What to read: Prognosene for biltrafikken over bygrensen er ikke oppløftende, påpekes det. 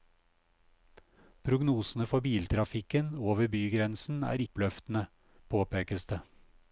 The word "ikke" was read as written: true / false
false